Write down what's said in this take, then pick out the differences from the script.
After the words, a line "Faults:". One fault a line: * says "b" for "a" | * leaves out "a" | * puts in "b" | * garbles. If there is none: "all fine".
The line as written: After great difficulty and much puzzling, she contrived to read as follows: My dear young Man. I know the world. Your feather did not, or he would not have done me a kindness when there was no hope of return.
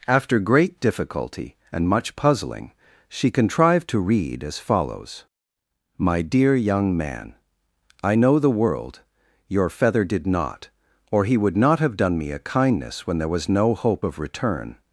After great difficulty and much puzzling, she contrived to read as follows: My dear young Man. I know the world. Your feather did not, or he would not have done me a kindness when there was no hope of return.
Faults:
all fine